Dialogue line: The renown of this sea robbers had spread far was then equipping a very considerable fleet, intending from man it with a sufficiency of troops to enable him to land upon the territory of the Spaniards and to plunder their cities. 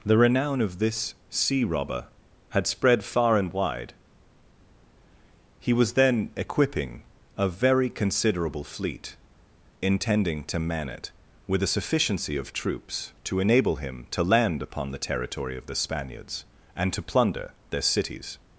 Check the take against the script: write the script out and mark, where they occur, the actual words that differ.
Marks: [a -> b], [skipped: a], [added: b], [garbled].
The renown of this sea [robbers -> robber] had spread far [added: and wide He] was then equipping a very considerable fleet, intending [from -> to] man it with a sufficiency of troops to enable him to land upon the territory of the Spaniards and to plunder their cities.